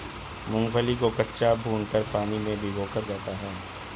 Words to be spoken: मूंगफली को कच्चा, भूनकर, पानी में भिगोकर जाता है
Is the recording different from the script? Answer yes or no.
no